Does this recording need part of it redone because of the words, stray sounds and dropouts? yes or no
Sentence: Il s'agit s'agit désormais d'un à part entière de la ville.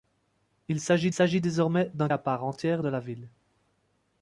no